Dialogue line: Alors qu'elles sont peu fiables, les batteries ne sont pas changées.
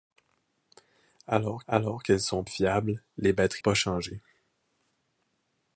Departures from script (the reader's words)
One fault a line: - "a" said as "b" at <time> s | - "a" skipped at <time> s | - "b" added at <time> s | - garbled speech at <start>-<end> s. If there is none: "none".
- "alors" added at 1.7 s
- "peu" skipped at 2.4 s
- "ne sont" skipped at 3.6 s